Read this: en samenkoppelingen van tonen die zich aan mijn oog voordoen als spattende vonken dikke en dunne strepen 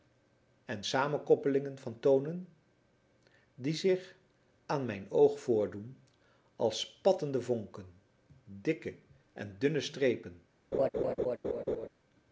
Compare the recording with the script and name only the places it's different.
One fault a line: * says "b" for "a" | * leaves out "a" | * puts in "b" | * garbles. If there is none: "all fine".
all fine